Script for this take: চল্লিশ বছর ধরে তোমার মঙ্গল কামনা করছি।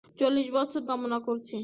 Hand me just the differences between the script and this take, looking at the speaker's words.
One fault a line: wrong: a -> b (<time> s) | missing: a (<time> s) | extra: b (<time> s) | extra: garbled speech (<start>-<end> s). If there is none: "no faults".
missing: ধরে তোমার মঙ্গল (0.8 s)